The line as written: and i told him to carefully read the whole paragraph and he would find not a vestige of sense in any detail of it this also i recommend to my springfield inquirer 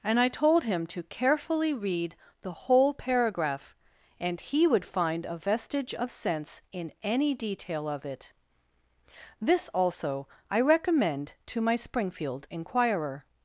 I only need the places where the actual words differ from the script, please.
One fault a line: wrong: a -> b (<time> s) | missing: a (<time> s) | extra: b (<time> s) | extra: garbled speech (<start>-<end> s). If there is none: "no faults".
missing: not (5.2 s)